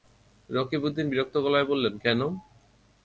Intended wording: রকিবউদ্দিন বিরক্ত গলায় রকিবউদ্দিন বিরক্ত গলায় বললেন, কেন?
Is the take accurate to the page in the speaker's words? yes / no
no